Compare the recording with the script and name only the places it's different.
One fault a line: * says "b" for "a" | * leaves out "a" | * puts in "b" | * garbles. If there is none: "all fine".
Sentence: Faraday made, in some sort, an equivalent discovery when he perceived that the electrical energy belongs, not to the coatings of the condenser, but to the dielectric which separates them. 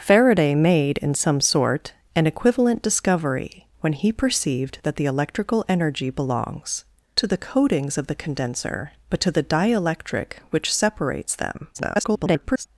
* leaves out "not"
* garbles